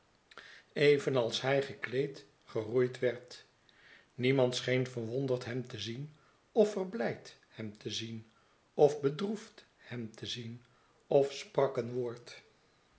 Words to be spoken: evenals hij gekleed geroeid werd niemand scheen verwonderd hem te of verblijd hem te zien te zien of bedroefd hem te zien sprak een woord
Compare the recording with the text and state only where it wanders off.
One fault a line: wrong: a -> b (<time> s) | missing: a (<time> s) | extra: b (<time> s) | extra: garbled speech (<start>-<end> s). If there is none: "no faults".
extra: zien (5.8 s)
missing: te zien (8.3 s)
extra: of (11.1 s)